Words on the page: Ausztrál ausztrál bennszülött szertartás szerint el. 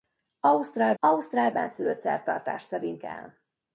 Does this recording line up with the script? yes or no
yes